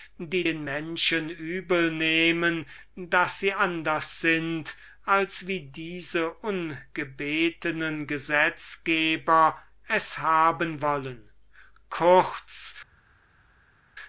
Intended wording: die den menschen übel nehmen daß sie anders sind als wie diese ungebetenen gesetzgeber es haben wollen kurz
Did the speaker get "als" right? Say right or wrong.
right